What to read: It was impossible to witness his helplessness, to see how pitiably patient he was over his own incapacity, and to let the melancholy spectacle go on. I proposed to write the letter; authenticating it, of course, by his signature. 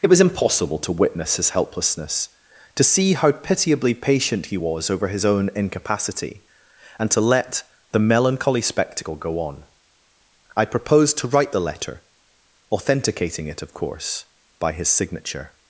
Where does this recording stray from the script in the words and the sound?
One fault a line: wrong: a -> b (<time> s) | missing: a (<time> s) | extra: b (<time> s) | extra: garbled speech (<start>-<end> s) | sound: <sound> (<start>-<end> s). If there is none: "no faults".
no faults